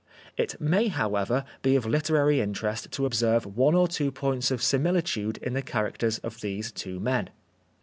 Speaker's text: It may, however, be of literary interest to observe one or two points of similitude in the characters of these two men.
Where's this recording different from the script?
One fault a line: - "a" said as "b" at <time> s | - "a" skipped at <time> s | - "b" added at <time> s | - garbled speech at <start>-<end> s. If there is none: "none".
none